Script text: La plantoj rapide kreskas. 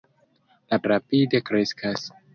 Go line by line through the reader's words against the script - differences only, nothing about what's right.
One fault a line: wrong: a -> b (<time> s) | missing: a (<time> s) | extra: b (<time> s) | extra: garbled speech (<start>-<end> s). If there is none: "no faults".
missing: plantoj (0.8 s)